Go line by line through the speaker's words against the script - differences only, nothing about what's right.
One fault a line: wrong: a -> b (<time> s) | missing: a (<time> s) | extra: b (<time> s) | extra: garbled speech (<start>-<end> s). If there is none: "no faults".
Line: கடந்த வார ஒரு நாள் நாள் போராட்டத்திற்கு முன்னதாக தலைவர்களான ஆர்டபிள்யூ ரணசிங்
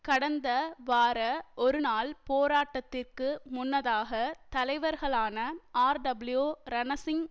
missing: நாள் (2.1 s)